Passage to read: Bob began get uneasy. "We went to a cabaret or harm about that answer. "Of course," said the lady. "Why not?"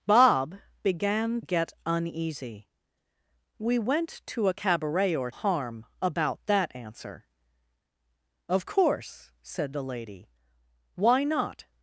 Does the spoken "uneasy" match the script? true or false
true